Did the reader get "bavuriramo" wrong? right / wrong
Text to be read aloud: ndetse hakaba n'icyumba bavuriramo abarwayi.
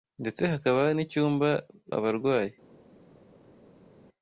wrong